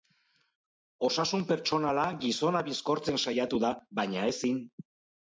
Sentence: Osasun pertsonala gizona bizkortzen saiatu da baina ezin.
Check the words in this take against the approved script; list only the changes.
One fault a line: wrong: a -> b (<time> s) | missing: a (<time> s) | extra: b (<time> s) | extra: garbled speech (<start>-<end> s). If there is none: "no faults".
no faults